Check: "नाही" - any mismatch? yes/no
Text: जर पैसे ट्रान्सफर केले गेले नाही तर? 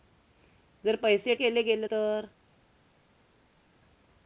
yes